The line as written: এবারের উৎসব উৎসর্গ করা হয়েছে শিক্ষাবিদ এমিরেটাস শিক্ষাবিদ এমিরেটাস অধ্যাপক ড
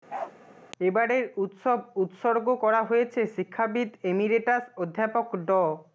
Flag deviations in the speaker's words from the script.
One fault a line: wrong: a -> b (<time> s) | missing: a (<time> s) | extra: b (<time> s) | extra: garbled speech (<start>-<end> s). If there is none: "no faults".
missing: শিক্ষাবিদ এমিরেটাস (4.6 s)